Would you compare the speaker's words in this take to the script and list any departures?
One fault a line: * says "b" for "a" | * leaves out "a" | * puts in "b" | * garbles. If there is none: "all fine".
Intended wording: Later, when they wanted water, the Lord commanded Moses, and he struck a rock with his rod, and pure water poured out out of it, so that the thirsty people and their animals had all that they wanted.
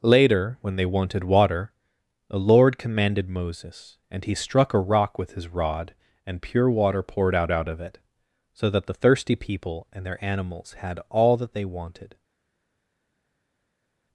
all fine